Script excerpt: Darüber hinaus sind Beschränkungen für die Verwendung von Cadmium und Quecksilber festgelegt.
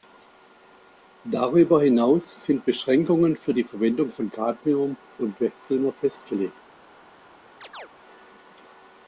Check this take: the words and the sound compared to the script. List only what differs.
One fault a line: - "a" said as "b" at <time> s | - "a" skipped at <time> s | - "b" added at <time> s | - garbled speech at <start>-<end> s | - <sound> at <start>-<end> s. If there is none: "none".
- chirp at 7.6-7.9 s